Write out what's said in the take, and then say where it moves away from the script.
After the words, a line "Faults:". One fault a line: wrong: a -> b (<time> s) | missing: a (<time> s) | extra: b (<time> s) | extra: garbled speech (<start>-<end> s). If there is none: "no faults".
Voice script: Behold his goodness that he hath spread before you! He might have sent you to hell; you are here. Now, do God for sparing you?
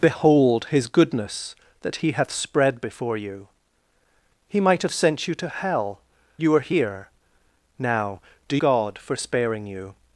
Behold his goodness that he hath spread before you! He might have sent you to hell; you are here. Now, do God for sparing you?
Faults:
no faults